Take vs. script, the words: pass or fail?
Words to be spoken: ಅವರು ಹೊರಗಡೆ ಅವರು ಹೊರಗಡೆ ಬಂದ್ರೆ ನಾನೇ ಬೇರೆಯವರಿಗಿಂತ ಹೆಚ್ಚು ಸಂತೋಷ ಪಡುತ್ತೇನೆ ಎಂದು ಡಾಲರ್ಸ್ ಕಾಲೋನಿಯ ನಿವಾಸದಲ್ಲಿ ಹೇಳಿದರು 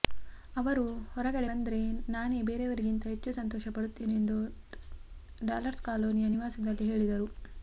fail